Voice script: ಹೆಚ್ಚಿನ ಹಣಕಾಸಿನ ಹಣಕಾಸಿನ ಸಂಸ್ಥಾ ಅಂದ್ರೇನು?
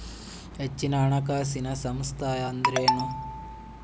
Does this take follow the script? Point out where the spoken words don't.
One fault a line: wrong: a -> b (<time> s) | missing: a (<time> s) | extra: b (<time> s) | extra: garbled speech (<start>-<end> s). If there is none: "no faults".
missing: ಹಣಕಾಸಿನ (1.7 s)